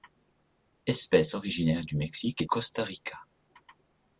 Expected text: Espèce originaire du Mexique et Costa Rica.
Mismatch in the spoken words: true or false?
false